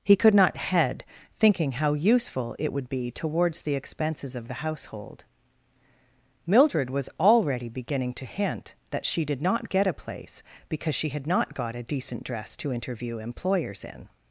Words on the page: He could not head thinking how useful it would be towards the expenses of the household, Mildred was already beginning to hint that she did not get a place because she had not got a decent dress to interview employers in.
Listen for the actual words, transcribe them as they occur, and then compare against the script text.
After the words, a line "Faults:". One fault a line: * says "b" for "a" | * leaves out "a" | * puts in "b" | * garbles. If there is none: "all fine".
He could not head thinking how useful it would be towards the expenses of the household, Mildred was already beginning to hint that she did not get a place because she had not got a decent dress to interview employers in.
Faults:
all fine